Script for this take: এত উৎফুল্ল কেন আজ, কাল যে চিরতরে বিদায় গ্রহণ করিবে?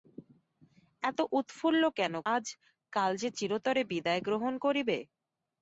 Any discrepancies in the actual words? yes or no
no